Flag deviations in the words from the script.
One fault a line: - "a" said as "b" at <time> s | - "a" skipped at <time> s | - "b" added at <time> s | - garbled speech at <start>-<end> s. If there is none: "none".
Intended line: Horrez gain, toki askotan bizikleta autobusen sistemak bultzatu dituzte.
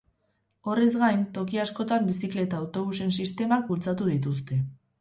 none